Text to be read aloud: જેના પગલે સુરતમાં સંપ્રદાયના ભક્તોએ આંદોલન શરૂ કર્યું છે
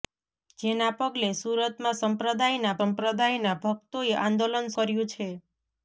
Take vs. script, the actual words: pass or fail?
fail